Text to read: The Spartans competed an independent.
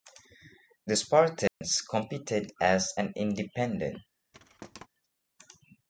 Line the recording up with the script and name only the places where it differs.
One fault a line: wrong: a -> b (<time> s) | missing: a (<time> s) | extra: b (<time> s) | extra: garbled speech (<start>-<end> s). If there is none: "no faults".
extra: as (2.6 s)